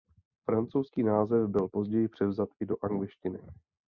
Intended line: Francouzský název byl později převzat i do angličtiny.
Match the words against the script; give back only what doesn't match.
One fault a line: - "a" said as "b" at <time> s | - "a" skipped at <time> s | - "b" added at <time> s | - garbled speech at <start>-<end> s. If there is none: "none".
none